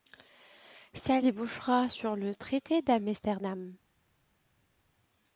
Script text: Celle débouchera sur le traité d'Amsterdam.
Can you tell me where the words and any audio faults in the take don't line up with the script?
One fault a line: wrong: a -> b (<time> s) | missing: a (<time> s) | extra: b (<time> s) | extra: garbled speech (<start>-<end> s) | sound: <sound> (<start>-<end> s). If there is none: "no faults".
no faults